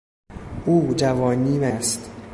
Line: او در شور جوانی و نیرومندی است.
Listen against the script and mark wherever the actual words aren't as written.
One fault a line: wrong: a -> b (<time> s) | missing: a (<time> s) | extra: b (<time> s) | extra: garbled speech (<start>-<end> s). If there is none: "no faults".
missing: در شور (0.9 s)
missing: نیرومندی (1.7 s)